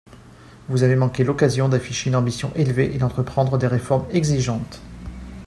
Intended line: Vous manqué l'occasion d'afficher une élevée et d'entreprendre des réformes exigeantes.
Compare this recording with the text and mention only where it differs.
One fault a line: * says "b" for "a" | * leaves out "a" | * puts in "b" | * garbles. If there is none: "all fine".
* puts in "avez"
* puts in "ambition"